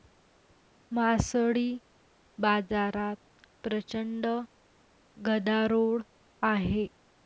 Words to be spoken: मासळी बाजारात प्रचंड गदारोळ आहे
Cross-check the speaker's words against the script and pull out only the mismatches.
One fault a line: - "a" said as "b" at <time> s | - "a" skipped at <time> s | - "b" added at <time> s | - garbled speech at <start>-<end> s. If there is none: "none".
none